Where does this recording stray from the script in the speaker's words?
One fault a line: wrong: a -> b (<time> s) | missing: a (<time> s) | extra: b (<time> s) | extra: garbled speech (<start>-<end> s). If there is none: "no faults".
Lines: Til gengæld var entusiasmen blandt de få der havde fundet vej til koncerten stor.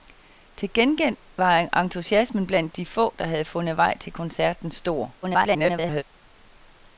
extra: garbled speech (5.2-6.0 s)